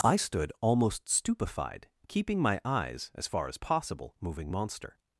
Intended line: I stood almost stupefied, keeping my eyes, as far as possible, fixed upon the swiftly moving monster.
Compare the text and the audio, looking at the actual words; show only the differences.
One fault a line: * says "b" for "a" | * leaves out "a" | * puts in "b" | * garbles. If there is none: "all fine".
* leaves out "fixed upon the swiftly"